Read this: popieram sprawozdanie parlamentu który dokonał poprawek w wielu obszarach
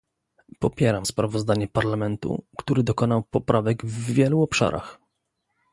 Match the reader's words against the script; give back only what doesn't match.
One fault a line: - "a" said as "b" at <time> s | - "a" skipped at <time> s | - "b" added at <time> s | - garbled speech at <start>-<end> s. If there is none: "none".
none